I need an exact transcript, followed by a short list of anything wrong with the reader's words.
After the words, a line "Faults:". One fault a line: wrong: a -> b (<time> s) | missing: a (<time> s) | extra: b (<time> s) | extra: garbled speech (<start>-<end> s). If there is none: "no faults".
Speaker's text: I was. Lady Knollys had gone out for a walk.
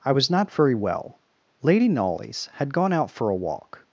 I was not very well. Lady Knollys had gone out for a walk.
Faults:
extra: not very well (0.3 s)